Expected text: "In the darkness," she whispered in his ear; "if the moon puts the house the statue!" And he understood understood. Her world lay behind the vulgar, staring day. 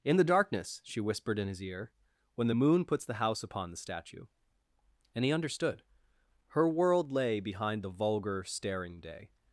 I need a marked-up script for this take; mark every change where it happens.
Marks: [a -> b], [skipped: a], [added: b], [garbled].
"In the darkness," she whispered in his ear; ["if -> when] the moon puts the house [added: upon] the statue!" And he understood [skipped: understood.] Her world lay behind the vulgar, staring day.